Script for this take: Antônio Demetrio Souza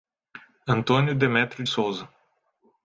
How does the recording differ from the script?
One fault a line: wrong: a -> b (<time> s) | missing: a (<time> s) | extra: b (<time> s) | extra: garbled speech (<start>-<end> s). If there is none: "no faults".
no faults